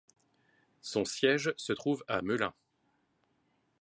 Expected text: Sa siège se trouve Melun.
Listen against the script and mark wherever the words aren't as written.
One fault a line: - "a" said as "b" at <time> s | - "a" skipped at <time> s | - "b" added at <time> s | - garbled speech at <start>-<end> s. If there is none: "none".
- "Sa" said as "Son" at 0.8 s
- "à" added at 2.1 s